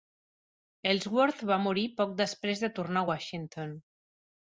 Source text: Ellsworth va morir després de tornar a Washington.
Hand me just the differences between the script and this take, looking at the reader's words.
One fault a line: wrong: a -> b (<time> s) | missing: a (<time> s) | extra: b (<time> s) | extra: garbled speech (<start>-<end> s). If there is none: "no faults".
extra: poc (2.0 s)